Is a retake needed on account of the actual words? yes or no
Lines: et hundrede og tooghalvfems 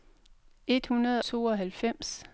yes